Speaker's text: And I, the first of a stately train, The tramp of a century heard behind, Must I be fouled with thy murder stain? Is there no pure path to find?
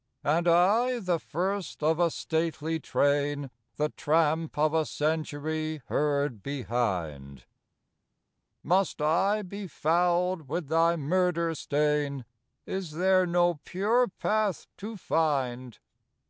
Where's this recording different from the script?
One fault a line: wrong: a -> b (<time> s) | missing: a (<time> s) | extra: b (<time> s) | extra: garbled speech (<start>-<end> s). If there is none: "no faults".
no faults